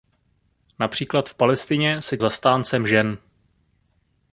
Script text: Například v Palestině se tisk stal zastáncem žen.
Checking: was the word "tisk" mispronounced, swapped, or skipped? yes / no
yes